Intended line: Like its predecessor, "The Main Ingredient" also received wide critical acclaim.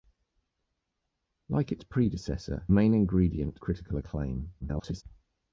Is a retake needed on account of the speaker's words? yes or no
yes